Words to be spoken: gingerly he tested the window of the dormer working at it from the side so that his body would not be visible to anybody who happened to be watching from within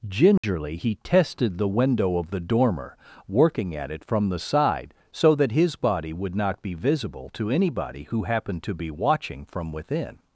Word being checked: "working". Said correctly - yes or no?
yes